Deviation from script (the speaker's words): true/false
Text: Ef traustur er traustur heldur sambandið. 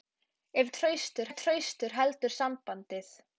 false